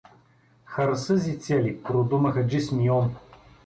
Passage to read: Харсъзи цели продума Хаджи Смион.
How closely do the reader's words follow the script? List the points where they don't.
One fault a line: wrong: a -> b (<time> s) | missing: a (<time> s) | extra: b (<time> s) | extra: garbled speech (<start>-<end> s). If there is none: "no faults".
no faults